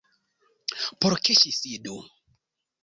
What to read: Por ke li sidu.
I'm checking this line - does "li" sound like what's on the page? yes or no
no